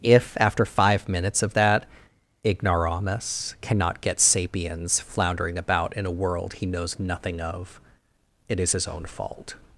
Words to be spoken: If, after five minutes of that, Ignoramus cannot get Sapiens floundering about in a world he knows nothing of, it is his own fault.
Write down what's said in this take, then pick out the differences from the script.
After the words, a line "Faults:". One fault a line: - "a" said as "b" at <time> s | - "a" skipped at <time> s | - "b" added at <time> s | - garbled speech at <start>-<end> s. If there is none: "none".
If, after five minutes of that, Ignoramus cannot get Sapiens floundering about in a world he knows nothing of, it is his own fault.
Faults:
none